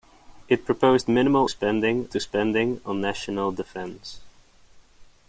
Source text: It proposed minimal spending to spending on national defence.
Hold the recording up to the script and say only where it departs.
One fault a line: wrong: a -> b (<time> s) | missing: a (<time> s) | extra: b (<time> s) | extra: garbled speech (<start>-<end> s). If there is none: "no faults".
no faults